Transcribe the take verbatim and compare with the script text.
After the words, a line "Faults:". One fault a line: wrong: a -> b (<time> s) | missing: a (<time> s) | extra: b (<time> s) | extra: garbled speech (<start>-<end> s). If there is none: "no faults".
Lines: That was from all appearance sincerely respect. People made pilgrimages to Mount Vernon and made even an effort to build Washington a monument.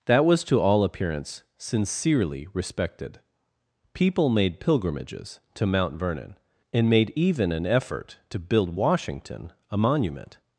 That was to all appearance sincerely respected. People made pilgrimages to Mount Vernon and made even an effort to build Washington a monument.
Faults:
wrong: from -> to (0.5 s)
wrong: respect -> respected (2.5 s)